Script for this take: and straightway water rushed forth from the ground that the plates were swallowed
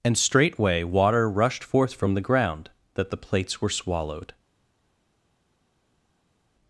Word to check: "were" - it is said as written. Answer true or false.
true